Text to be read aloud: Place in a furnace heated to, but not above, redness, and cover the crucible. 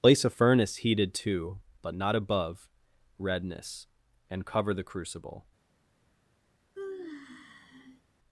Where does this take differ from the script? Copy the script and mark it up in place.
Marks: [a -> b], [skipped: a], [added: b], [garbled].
Place [skipped: in] a furnace heated to, but not above, redness, and cover the crucible.